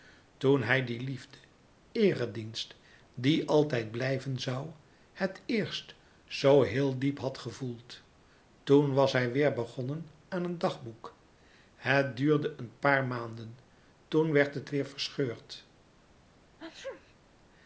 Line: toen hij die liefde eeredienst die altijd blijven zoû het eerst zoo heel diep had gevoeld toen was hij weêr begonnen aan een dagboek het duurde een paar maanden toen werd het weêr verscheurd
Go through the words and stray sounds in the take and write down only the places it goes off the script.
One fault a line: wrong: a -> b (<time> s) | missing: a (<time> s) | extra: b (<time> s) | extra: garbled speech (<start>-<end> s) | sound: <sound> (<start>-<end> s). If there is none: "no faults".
sound: sneeze (16.6-17.2 s)